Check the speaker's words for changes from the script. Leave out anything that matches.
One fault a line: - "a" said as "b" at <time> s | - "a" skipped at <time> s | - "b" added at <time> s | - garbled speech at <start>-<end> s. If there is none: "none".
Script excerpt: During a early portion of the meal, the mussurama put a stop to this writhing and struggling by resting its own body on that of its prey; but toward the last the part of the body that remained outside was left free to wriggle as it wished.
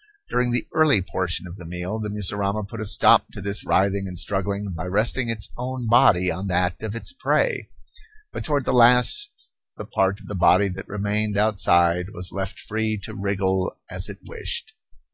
- "a" said as "the" at 0.5 s